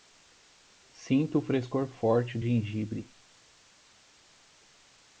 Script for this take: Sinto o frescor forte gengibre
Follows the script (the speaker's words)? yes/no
yes